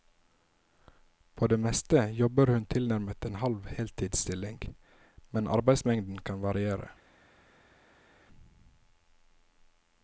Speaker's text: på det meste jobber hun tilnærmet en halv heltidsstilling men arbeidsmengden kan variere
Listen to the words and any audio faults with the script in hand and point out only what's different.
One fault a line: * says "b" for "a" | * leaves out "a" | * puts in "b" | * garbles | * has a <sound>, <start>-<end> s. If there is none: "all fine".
all fine